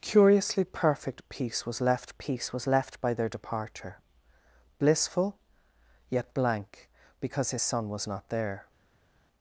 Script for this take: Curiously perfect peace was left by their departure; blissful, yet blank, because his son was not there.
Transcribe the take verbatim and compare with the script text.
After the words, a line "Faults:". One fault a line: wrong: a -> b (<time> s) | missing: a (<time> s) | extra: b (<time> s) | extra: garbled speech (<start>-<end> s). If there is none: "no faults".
Curiously perfect peace was left peace was left by their departure; blissful, yet blank, because his son was not there.
Faults:
extra: peace was left (2.2 s)